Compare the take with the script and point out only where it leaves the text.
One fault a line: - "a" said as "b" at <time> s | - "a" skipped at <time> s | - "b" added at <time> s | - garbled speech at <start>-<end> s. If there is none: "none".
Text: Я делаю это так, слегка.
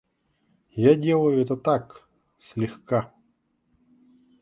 none